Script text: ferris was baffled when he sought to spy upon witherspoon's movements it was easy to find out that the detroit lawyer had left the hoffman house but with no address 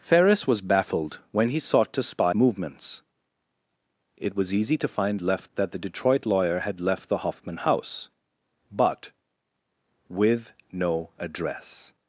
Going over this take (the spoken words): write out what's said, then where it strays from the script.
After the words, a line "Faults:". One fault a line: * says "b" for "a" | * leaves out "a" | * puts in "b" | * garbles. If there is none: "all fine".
ferris was baffled when he sought to spy movements it was easy to find left that the detroit lawyer had left the hoffman house but with no address
Faults:
* leaves out "upon witherspoon's"
* says "left" for "out"